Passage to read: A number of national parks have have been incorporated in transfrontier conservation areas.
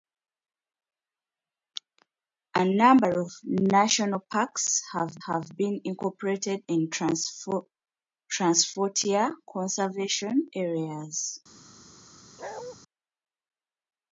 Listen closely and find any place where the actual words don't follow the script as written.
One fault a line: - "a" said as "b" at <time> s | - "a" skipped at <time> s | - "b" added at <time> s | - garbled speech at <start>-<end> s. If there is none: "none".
none